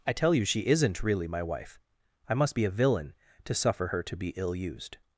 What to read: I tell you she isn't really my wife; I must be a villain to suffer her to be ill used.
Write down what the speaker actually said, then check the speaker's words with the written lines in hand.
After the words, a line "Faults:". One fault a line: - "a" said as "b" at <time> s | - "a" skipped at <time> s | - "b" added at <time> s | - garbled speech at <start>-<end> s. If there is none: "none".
I tell you she isn't really my wife; I must be a villain to suffer her to be ill used.
Faults:
none